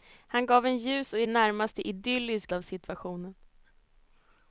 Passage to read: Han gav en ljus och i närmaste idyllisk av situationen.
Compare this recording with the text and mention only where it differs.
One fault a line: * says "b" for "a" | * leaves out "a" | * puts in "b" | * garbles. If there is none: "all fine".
all fine